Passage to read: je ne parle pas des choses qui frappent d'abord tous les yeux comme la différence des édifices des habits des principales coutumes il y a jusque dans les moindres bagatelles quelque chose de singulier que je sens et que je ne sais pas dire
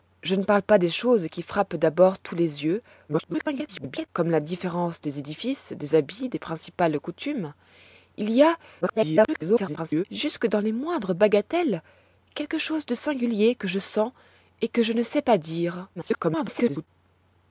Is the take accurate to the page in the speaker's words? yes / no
no